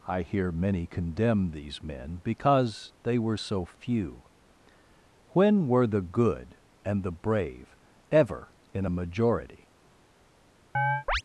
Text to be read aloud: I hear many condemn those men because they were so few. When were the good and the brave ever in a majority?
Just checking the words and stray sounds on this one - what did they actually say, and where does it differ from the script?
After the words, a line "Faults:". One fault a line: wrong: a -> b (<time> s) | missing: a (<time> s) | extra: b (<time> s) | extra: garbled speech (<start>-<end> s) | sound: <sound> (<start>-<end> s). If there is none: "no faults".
I hear many condemn these men because they were so few. When were the good and the brave ever in a majority?
Faults:
wrong: those -> these (1.5 s)
sound: chirp (10.7-11.2 s)